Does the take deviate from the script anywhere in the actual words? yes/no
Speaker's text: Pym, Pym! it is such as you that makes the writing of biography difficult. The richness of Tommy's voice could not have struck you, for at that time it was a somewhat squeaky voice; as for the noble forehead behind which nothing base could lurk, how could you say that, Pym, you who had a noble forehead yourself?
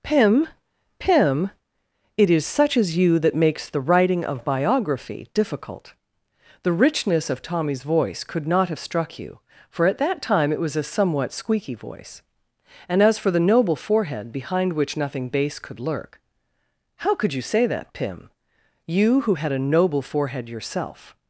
yes